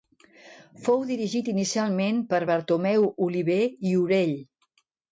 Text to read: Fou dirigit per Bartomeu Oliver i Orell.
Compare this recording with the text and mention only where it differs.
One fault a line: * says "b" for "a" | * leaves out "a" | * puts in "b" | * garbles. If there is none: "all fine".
* puts in "inicialment"